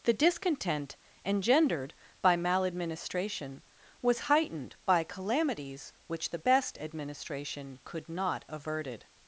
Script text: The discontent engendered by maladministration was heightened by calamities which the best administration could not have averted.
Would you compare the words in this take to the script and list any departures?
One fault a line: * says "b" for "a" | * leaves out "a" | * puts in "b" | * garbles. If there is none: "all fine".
* leaves out "have"